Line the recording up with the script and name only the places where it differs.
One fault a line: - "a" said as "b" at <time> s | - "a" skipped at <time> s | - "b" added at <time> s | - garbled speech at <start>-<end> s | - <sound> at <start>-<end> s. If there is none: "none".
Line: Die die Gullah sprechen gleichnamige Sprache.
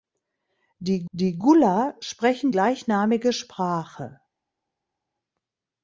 none